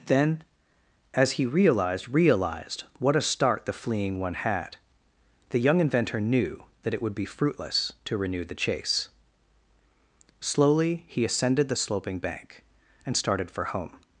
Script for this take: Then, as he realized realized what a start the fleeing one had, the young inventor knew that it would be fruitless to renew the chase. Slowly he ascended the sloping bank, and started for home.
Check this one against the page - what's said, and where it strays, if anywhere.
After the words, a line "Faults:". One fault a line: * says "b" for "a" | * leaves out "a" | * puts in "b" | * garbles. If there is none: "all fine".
Then, as he realized realized what a start the fleeing one had, the young inventor knew that it would be fruitless to renew the chase. Slowly he ascended the sloping bank, and started for home.
Faults:
all fine